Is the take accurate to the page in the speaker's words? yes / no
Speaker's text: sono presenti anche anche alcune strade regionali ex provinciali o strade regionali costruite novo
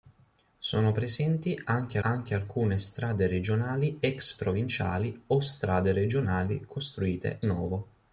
yes